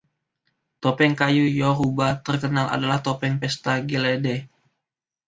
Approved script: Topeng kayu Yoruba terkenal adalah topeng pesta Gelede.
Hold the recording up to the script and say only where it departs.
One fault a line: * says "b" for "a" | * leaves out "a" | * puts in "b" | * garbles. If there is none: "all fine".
all fine